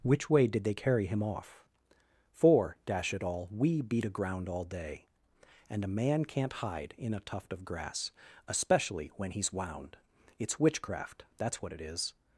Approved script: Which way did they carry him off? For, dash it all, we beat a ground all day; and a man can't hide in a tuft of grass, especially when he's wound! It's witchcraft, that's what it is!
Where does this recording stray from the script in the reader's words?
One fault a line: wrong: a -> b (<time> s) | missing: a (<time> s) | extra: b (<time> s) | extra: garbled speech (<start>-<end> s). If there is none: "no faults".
no faults